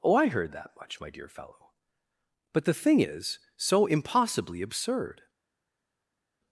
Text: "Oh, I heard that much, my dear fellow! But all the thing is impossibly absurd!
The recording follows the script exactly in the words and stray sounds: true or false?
false